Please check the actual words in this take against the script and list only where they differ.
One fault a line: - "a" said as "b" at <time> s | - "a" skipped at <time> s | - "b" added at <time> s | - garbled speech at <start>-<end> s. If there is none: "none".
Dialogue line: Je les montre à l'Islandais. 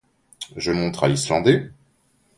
- "les" skipped at 0.7 s